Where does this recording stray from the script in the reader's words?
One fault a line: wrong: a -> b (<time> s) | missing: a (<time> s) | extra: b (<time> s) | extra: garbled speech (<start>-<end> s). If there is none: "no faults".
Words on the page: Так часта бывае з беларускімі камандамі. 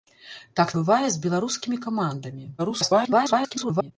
missing: часта (0.7 s)
extra: garbled speech (2.6-3.9 s)